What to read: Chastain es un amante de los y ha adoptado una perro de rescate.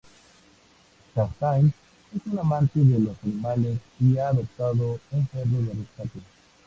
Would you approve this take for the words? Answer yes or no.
no